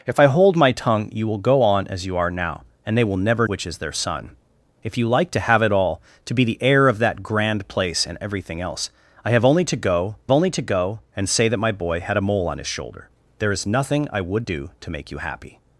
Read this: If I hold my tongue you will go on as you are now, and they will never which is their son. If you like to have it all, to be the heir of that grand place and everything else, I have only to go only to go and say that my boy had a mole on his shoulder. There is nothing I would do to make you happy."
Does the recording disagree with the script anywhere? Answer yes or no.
no